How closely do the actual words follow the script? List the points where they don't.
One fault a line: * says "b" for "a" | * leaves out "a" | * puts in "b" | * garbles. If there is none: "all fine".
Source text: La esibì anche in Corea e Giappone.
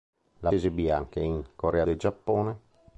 all fine